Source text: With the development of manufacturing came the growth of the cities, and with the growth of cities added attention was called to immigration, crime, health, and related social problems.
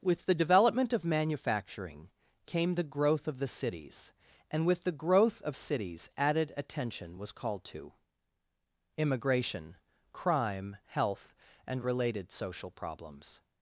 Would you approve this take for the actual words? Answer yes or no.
yes